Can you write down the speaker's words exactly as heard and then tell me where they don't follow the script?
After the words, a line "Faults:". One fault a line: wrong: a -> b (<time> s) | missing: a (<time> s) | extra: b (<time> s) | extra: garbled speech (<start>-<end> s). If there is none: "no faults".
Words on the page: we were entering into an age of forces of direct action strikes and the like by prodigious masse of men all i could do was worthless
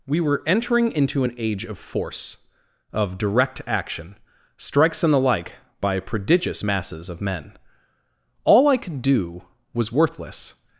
we were entering into an age of force of direct action strikes and the like by prodigious masses of men all i could do was worthless
Faults:
wrong: forces -> force (1.8 s)
wrong: masse -> masses (6.6 s)